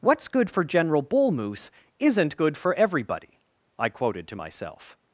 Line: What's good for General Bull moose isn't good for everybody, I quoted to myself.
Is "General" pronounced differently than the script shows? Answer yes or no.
no